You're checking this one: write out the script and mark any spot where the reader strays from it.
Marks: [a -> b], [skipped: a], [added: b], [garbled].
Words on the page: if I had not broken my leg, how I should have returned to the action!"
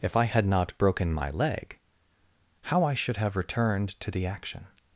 if I had not broken my leg, how I should have returned to the action!"